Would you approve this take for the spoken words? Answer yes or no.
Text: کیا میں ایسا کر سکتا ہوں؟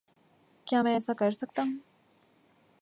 yes